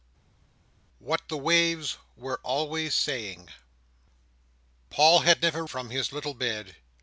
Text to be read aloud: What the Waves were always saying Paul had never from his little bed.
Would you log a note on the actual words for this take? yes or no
no